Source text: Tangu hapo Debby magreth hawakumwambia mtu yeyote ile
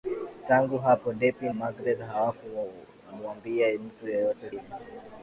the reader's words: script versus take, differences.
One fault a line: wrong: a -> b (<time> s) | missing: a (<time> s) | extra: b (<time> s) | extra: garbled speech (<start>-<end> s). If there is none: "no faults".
no faults